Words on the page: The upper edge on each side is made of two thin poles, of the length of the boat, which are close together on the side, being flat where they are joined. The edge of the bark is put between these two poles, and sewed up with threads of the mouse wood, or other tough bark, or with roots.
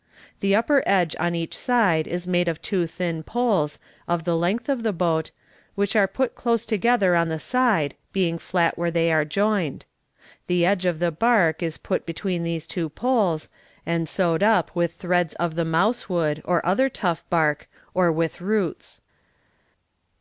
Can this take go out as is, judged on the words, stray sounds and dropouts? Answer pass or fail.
fail